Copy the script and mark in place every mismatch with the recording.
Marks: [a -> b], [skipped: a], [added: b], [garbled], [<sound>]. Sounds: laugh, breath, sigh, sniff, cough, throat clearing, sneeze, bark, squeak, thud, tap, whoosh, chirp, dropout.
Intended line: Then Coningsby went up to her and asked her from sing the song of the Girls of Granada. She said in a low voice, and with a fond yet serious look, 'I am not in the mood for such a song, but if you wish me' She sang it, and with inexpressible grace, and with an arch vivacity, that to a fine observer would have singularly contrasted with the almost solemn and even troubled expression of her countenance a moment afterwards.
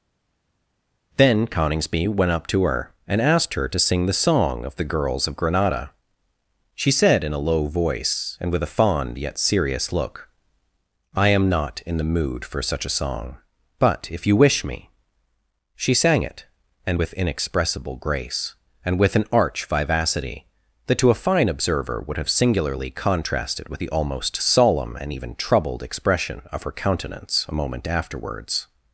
Then Coningsby went up to her and asked her [from -> to] sing the song of the Girls of Granada. She said in a low voice, and with a fond yet serious look, 'I am not in the mood for such a song, but if you wish me' She sang it, and with inexpressible grace, and with an arch vivacity, that to a fine observer would have singularly contrasted with the almost solemn and even troubled expression of her countenance a moment afterwards.